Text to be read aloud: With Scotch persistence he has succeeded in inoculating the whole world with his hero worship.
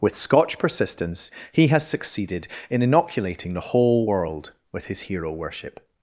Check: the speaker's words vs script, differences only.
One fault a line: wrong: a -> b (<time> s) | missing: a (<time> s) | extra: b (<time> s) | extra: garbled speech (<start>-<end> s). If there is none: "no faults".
no faults